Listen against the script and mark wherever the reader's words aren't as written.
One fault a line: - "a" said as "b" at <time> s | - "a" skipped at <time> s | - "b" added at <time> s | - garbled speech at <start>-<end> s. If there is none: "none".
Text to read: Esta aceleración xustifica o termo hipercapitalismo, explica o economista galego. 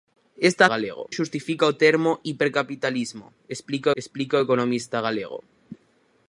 - "aceleración" said as "galego" at 0.7 s
- "explica" added at 4.0 s